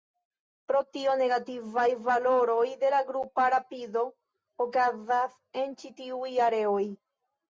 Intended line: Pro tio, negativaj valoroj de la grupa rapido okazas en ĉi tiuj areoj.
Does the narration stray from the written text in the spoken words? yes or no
no